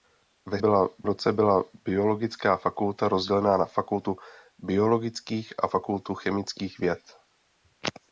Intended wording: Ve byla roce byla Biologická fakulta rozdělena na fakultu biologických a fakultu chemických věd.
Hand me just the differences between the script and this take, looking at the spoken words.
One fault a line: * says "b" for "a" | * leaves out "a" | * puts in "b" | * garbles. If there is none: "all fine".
all fine